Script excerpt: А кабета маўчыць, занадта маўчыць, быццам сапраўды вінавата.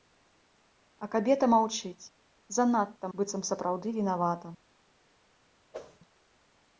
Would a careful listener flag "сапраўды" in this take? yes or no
no